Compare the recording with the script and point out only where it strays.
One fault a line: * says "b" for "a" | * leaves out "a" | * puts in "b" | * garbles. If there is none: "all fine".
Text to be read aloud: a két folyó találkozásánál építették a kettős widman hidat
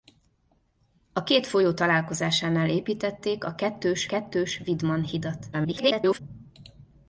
* puts in "kettős"
* garbles